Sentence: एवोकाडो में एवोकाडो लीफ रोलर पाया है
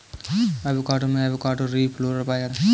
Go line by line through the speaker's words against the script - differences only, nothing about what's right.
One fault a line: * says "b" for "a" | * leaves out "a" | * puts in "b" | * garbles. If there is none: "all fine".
all fine